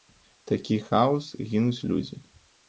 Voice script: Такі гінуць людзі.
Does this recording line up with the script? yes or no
no